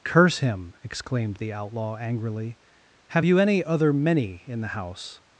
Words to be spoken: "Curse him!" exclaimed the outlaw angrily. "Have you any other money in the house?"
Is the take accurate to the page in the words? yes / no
no